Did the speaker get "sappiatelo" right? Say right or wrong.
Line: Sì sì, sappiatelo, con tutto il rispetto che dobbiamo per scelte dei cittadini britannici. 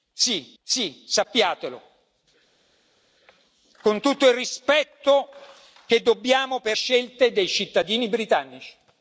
right